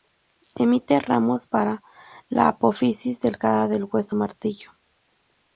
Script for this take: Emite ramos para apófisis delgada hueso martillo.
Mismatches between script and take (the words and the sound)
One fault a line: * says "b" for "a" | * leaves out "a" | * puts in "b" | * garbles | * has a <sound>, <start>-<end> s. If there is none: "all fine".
* puts in "la"
* puts in "del"